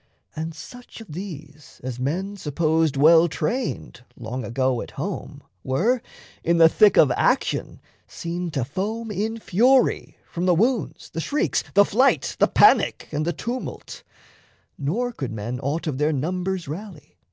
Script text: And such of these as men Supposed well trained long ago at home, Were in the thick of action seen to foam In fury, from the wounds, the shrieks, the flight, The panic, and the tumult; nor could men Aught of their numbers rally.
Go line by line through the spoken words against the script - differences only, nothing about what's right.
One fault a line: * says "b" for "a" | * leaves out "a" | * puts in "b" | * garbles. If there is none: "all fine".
all fine